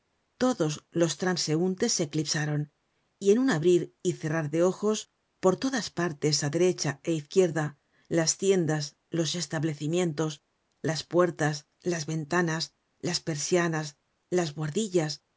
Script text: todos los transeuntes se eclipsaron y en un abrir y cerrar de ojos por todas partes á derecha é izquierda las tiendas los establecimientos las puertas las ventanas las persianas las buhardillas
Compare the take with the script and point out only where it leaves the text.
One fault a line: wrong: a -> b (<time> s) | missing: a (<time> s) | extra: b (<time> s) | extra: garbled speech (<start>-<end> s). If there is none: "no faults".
no faults